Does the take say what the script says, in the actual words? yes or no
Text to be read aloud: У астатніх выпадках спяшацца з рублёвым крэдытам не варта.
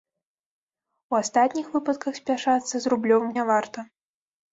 no